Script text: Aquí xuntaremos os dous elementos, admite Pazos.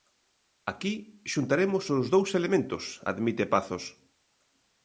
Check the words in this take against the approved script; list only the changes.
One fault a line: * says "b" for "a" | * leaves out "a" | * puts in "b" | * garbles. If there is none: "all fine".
all fine